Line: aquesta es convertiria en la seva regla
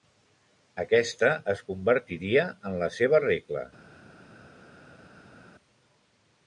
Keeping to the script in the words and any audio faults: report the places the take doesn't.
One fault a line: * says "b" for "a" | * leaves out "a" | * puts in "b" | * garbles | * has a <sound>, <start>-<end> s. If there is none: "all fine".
all fine